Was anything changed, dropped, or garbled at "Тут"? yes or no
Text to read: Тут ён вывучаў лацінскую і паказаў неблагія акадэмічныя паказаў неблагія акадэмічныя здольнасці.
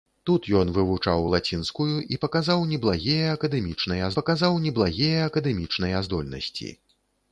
no